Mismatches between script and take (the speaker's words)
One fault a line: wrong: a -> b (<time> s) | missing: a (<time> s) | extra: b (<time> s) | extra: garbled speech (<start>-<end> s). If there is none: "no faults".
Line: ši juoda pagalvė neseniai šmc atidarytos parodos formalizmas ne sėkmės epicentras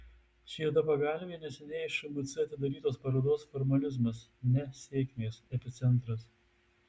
no faults